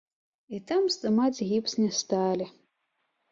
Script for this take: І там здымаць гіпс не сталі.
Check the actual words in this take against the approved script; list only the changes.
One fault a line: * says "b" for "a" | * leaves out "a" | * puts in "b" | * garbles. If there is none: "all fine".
all fine